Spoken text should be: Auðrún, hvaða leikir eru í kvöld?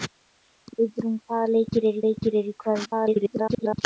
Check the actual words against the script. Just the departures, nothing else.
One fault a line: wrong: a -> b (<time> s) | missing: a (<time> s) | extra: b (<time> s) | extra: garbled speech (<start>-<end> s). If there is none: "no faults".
extra: leikir eru (2.1 s)
extra: garbled speech (2.8-3.8 s)